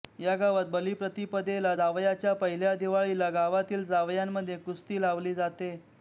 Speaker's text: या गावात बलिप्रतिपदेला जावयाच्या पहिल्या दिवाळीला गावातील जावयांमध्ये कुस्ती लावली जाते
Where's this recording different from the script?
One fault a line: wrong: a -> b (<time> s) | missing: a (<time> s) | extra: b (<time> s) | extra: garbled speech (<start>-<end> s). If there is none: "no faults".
no faults